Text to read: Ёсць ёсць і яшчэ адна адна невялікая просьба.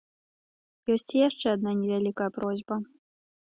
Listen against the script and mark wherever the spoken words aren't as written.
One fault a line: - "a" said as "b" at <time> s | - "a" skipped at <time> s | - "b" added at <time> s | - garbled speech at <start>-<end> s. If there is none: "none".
- "ёсць" skipped at 1.1 s
- "адна" skipped at 1.7 s